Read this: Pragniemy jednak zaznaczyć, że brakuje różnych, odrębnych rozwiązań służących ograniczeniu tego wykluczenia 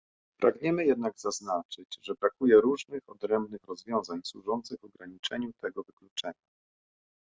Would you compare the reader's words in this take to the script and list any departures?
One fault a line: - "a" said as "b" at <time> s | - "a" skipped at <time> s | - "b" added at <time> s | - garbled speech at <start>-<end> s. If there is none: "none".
none